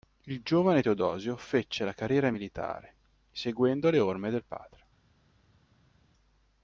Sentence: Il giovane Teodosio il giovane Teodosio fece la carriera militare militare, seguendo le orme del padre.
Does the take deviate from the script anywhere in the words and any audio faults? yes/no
yes